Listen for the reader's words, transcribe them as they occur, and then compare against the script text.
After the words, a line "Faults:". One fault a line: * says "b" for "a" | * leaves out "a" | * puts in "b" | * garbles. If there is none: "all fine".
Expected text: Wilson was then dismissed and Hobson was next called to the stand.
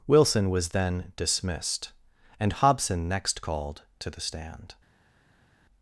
Wilson was then dismissed and Hobson next called to the stand.
Faults:
* leaves out "was"